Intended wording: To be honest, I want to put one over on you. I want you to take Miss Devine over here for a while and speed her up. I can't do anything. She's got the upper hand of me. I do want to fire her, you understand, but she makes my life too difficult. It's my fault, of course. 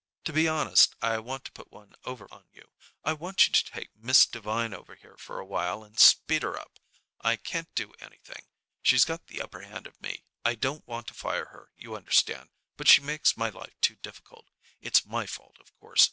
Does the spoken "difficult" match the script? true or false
true